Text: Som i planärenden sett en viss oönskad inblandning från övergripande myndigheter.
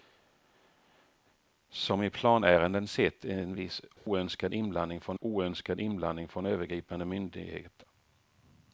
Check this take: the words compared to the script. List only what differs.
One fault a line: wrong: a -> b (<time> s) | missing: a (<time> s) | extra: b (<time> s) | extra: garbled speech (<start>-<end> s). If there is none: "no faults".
extra: oönskad inblandning från (5.2 s)